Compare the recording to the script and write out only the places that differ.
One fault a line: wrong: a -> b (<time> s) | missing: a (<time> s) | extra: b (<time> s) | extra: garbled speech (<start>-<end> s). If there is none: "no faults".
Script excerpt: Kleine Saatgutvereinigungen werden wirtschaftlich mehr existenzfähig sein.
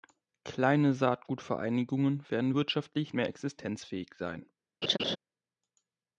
no faults